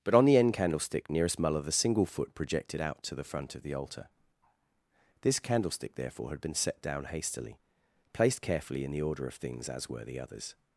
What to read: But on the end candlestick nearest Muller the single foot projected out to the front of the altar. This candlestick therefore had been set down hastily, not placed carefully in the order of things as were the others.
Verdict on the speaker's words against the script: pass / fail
fail